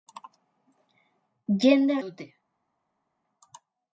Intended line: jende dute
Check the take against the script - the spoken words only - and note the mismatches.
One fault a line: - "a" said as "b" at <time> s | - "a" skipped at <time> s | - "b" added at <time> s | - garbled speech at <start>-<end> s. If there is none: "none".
none